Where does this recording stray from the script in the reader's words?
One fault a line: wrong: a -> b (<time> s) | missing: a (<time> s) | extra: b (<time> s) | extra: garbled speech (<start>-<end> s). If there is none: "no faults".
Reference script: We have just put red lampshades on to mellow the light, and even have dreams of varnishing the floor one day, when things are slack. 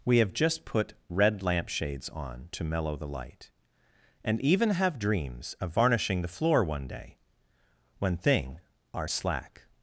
wrong: things -> thing (8.2 s)